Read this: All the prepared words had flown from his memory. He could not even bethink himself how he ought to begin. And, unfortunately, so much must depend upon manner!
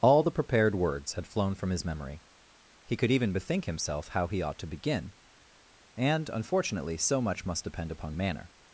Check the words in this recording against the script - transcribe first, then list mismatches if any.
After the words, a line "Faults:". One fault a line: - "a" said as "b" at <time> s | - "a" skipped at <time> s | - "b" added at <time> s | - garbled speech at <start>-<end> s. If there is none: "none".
All the prepared words had flown from his memory. He could even bethink himself how he ought to begin. And, unfortunately, so much must depend upon manner!
Faults:
- "not" skipped at 3.1 s